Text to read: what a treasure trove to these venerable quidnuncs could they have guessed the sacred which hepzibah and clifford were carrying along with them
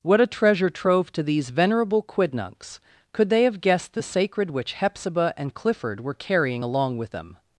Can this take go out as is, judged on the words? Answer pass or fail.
pass